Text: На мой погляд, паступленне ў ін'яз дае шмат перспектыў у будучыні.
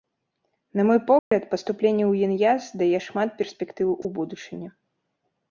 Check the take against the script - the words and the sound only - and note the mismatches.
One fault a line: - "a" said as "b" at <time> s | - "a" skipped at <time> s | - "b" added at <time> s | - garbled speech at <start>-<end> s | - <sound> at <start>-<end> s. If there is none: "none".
- dropout at 1.2-1.3 s
- dropout at 4.0-4.0 s